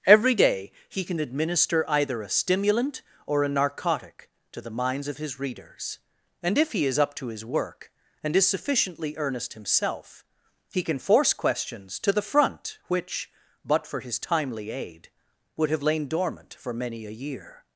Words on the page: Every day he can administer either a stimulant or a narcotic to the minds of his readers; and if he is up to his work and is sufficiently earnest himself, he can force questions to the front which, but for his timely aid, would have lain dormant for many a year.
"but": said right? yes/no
yes